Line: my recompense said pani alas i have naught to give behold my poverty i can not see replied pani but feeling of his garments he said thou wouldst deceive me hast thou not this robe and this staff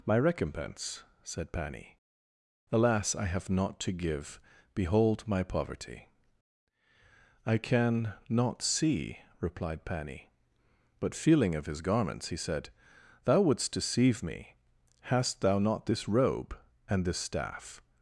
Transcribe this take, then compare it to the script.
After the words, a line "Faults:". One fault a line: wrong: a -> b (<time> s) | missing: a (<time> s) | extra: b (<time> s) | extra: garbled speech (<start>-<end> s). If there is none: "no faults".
my recompense said pani alas i have naught to give behold my poverty i can not see replied pani but feeling of his garments he said thou wouldst deceive me hast thou not this robe and this staff
Faults:
no faults